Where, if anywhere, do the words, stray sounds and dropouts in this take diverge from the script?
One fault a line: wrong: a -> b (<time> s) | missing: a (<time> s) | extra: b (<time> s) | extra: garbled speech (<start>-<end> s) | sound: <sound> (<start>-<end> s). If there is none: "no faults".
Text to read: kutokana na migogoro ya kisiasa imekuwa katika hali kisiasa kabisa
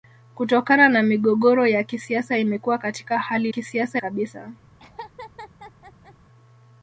sound: laugh (4.8-6.1 s)